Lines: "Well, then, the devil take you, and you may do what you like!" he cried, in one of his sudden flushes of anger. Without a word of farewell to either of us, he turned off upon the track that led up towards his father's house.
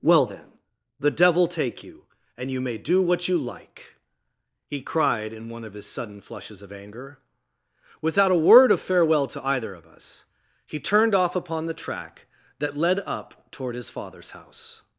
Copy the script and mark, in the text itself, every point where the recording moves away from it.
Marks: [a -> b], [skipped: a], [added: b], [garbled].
"Well, then, the devil take you, and you may do what you like!" he cried, in one of his sudden flushes of anger. Without a word of farewell to either of us, he turned off upon the track that led up [towards -> toward] his father's house.